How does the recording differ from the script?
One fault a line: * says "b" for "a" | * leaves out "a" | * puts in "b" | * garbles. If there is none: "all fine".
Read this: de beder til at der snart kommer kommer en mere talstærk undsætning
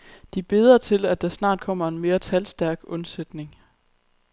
* leaves out "kommer"